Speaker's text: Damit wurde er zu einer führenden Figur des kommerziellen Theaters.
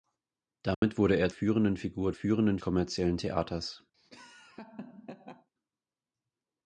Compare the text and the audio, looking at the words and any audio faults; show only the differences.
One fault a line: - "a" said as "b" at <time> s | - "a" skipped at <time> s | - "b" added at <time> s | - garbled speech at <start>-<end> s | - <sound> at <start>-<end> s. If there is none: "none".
- dropout at 0.7-0.8 s
- "zu einer" skipped at 1.3 s
- "des" said as "führenden" at 2.1 s
- laugh at 3.9-5.5 s